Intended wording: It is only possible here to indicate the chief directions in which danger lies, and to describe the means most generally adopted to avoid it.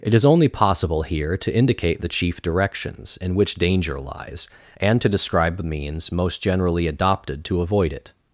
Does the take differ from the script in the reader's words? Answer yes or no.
no